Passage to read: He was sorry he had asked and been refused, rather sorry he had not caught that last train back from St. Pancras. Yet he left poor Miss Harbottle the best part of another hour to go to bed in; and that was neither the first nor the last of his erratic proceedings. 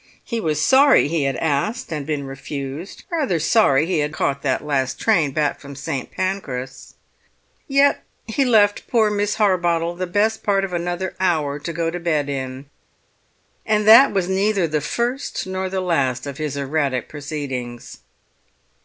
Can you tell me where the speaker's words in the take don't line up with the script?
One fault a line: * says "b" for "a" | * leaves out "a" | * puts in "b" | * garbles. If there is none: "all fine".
* leaves out "not"